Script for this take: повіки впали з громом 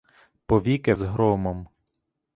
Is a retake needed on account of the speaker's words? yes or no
yes